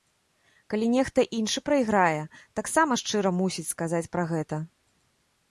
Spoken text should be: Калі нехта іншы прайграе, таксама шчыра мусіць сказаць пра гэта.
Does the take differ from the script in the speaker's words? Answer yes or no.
no